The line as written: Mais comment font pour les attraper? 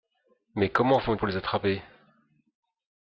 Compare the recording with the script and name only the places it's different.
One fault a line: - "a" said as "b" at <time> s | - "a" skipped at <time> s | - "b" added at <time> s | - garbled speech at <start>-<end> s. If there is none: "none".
none